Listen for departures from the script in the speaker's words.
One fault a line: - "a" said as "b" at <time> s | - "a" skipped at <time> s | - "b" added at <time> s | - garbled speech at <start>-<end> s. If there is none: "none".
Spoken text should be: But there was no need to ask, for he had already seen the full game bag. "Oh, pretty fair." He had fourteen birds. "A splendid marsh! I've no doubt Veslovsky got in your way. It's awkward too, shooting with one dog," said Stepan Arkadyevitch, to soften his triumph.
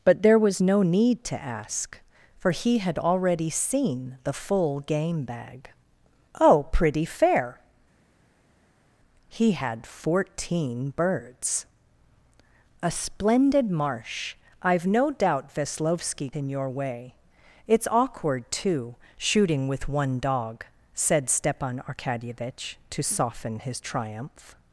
- "got" skipped at 16.3 s